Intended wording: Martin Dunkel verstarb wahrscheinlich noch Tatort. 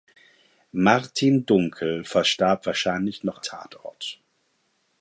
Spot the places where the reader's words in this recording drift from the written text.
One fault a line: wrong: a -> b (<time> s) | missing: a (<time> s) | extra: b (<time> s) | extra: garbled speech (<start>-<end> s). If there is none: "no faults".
no faults